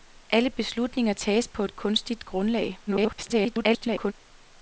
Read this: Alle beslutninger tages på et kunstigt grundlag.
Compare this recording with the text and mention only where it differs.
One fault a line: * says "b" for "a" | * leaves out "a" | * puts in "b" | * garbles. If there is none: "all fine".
* garbles